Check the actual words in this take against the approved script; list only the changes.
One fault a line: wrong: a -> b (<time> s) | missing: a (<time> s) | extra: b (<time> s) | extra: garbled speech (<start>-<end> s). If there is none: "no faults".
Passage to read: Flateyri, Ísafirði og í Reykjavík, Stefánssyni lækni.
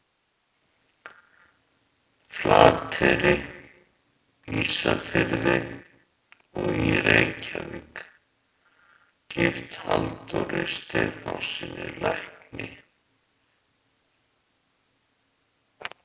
extra: gift Halldóri (9.3 s)